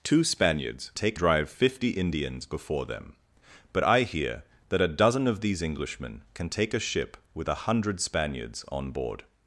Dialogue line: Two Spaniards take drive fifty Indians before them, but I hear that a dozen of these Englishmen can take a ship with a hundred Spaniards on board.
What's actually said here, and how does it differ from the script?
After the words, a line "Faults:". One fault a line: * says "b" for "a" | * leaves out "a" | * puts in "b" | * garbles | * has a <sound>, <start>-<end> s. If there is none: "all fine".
Two Spaniards take drive fifty Indians before them, but I hear that a dozen of these Englishmen can take a ship with a hundred Spaniards on board.
Faults:
all fine